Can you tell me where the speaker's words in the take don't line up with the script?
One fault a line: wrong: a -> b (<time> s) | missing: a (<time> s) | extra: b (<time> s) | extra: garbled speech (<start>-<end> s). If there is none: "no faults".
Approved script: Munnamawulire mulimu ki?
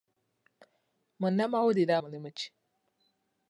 no faults